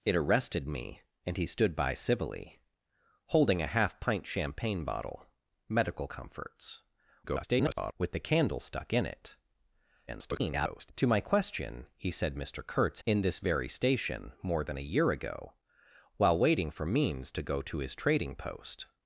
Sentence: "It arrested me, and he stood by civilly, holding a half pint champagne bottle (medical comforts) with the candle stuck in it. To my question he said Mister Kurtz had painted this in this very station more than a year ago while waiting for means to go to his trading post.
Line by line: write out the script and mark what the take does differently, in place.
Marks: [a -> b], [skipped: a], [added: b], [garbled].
"It arrested me, and he stood by civilly, holding a half pint champagne bottle (medical comforts) [garbled] with the candle stuck in it. [garbled] To my question he said Mister Kurtz [skipped: had painted this] in this very station more than a year ago while waiting for means to go to his trading post.